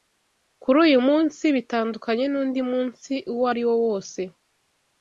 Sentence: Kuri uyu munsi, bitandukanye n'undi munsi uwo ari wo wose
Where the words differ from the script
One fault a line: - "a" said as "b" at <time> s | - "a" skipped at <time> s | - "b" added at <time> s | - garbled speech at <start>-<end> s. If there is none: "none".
none